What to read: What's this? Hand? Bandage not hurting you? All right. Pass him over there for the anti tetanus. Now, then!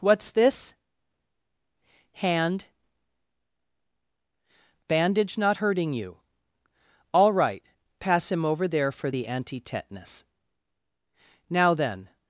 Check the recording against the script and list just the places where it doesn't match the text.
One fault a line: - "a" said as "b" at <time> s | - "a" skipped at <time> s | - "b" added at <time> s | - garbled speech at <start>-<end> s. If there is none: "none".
none